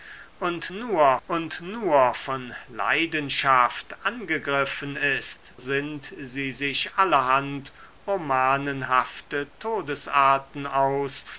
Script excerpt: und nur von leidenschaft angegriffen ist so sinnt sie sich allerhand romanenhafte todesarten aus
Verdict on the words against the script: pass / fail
fail